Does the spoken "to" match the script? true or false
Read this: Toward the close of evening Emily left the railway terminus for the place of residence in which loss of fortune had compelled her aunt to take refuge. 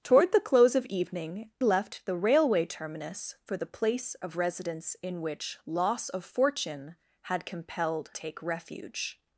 false